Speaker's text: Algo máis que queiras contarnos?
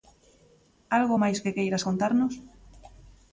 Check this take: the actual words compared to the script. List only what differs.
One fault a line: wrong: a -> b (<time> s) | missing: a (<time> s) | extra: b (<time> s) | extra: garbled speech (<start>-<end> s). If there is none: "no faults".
no faults